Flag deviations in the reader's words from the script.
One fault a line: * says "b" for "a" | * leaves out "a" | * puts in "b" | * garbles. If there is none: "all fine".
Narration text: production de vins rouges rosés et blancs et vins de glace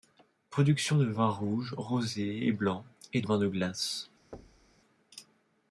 all fine